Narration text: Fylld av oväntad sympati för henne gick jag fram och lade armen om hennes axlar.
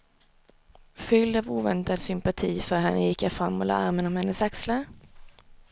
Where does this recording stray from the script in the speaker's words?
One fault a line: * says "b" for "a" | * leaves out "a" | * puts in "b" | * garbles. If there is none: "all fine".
all fine